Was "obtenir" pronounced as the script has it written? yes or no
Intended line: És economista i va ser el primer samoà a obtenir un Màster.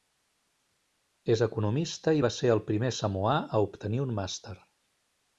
yes